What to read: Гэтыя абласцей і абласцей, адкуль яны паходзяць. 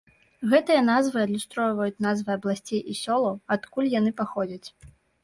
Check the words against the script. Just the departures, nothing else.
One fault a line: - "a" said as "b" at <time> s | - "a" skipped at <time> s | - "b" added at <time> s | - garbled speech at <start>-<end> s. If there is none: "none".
- "назвы адлюстроўваюць назвы" added at 0.8 s
- "абласцей" said as "сёлаў" at 3.0 s